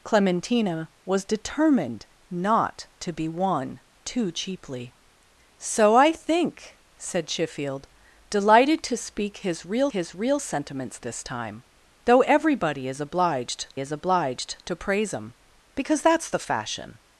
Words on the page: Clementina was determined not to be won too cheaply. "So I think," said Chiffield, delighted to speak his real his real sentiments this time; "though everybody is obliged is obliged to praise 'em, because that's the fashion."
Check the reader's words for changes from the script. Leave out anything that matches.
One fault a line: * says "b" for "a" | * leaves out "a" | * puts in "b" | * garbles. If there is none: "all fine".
all fine